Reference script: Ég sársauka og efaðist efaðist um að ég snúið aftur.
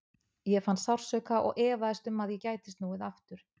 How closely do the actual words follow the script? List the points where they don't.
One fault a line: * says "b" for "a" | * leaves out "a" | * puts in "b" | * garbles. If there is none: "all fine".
* puts in "fann"
* leaves out "efaðist"
* puts in "gæti"